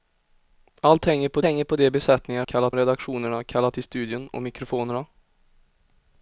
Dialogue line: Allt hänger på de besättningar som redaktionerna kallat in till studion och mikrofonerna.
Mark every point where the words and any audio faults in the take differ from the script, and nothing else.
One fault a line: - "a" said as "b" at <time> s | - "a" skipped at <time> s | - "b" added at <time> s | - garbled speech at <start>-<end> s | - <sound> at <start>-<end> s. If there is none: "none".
- "hänger på" added at 1.4 s
- "som" said as "kallat" at 2.4 s
- "in" skipped at 3.8 s